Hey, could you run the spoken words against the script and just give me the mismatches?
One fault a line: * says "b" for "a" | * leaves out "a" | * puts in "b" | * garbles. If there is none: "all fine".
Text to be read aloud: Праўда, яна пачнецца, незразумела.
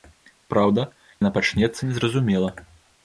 all fine